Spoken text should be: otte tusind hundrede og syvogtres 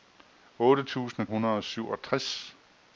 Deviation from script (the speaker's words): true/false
false